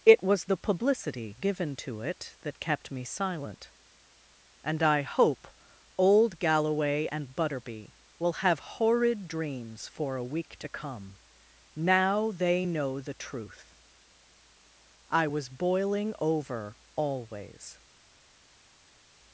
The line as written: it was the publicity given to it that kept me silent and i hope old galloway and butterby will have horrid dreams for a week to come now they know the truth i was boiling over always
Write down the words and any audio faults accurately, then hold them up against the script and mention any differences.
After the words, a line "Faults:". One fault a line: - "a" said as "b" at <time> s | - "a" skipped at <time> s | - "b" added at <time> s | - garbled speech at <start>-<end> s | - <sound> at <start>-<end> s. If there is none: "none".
it was the publicity given to it that kept me silent and i hope old galloway and butterby will have horrid dreams for a week to come now they know the truth i was boiling over always
Faults:
none